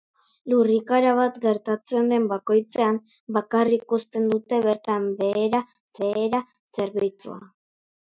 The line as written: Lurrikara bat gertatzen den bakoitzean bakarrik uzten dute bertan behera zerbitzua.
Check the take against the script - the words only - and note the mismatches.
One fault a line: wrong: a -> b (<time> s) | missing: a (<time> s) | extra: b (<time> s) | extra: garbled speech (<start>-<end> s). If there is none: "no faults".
extra: behera (6.1 s)